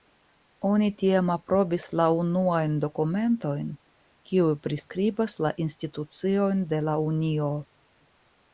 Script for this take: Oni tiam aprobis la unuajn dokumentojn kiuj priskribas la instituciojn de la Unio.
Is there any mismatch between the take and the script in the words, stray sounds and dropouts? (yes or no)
no